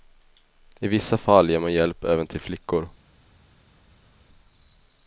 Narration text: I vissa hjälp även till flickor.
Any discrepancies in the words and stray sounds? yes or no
yes